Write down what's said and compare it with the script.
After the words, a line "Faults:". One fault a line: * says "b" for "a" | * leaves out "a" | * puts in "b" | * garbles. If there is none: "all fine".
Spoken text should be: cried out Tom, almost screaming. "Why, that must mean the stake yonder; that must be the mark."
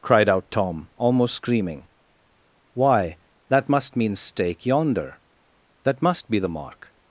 cried out Tom, almost screaming. "Why, that must mean stake yonder; that must be the mark."
Faults:
* leaves out "the"